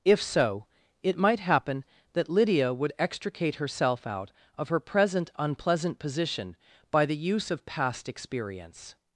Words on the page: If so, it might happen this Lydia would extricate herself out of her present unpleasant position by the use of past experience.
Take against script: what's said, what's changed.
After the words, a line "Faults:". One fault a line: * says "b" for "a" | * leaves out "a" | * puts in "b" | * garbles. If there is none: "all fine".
If so, it might happen that Lydia would extricate herself out of her present unpleasant position by the use of past experience.
Faults:
* says "that" for "this"